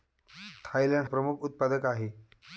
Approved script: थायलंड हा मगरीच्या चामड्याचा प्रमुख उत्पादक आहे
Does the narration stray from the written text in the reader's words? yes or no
yes